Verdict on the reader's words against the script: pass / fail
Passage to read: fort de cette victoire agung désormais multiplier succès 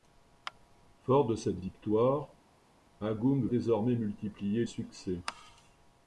pass